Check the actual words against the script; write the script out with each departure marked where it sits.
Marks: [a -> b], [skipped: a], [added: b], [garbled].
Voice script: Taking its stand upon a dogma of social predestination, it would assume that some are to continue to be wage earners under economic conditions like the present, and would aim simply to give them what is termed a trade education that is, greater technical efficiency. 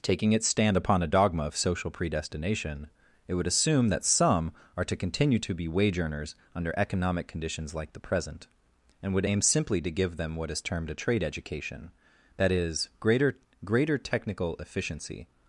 Taking its stand upon a dogma of social predestination, it would assume that some are to continue to be wage earners under economic conditions like the present, and would aim simply to give them what is termed a trade education that is, greater [added: greater] technical efficiency.